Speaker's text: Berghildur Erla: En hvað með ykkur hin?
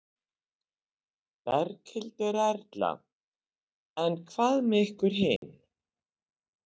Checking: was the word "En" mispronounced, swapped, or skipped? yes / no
no